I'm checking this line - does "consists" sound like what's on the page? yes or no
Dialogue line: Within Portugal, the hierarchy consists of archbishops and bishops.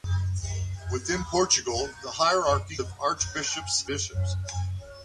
no